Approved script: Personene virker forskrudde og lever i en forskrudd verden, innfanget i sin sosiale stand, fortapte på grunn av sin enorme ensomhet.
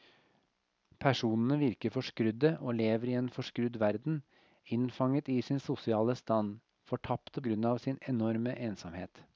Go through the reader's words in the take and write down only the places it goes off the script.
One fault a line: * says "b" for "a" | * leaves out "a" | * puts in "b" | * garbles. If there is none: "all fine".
* leaves out "på"